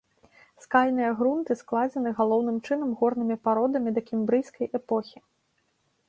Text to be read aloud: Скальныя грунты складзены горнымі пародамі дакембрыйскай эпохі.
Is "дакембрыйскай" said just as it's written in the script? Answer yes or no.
yes